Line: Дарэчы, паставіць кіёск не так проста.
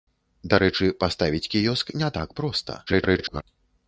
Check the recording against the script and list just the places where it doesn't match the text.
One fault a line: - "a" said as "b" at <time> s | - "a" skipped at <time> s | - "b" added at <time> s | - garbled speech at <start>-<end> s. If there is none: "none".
- garbled speech at 2.9-3.4 s